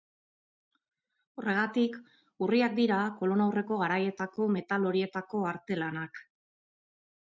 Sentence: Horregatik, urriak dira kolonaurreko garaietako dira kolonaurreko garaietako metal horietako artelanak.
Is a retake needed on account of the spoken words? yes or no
yes